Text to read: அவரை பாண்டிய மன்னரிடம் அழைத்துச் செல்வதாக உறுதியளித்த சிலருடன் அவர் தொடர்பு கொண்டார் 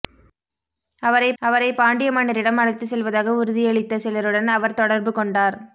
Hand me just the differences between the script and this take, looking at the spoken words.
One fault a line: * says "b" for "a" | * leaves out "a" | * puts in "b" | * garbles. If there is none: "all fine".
* puts in "அவரை"